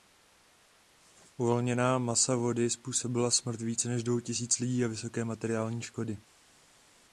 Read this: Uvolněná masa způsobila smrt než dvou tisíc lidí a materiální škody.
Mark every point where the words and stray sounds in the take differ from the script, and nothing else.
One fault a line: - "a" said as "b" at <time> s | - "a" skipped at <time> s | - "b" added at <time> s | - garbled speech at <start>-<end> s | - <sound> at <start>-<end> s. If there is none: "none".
- "vody" added at 2.4 s
- "více" added at 3.6 s
- "vysoké" added at 4.9 s